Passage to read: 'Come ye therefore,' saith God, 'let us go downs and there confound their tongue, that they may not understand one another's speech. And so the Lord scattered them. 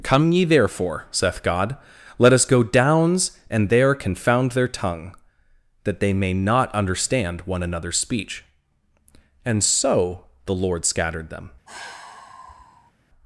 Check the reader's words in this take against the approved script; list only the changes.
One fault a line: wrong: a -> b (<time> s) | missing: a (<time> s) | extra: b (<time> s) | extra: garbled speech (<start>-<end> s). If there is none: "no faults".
no faults